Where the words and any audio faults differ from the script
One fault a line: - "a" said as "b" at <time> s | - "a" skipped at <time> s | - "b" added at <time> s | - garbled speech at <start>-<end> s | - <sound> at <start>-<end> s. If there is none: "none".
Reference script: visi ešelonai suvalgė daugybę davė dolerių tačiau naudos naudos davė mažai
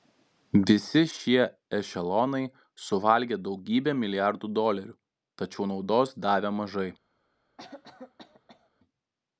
- "šie" added at 1.1 s
- "davė" said as "milijardų" at 4.0 s
- "naudos" skipped at 6.2 s
- cough at 7.6-8.7 s